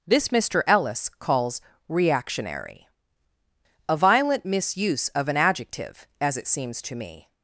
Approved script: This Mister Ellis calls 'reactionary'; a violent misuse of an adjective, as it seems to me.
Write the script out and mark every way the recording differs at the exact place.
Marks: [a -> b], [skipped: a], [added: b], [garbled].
This Mister Ellis calls 'reactionary'; a violent misuse of an adjective, as it seems to me.